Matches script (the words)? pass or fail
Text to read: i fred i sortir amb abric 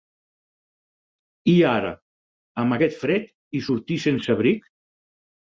fail